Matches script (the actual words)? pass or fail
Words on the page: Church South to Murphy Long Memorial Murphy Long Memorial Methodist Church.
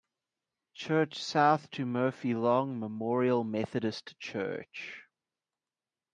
fail